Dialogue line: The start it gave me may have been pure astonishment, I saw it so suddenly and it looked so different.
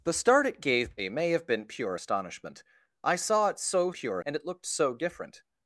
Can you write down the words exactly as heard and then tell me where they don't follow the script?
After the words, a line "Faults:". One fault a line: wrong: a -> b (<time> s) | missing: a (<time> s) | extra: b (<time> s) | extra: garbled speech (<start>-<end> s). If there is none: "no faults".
The start it gave me may have been pure astonishment, I saw it so pure and it looked so different.
Faults:
wrong: suddenly -> pure (3.9 s)